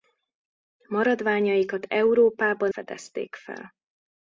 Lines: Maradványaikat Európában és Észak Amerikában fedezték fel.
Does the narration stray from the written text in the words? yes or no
yes